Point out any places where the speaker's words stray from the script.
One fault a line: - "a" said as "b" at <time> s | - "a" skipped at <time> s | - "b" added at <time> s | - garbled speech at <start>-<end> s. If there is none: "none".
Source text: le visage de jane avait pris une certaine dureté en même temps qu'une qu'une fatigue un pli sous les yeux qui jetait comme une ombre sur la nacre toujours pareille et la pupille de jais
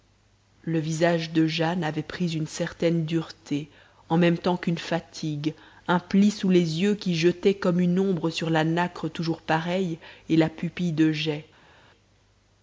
- "qu'une" skipped at 4.8 s